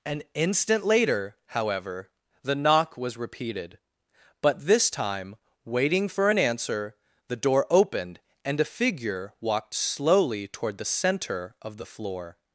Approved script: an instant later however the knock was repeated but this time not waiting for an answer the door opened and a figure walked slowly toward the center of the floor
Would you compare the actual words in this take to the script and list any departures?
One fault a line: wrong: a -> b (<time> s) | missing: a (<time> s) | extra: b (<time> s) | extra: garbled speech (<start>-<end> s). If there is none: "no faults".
missing: not (5.4 s)